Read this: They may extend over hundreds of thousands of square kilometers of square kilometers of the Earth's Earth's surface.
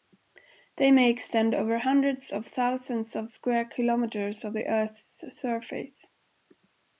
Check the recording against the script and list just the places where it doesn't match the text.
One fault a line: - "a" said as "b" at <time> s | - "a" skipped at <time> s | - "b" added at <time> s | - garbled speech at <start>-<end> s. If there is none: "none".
- "square kilometers of" skipped at 4.5 s
- "Earth's" skipped at 5.2 s